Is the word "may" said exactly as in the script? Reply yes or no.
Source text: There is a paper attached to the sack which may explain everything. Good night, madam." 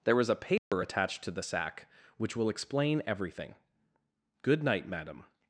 no